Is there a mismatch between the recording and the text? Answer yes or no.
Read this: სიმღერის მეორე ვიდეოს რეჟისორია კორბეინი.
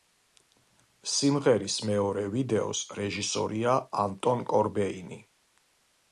yes